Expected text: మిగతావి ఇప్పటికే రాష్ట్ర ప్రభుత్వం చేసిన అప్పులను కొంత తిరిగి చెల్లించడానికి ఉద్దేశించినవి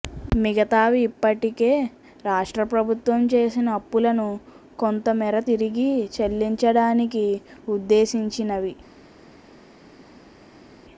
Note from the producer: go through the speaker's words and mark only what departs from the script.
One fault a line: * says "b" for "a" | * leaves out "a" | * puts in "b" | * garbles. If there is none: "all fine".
* puts in "మేర"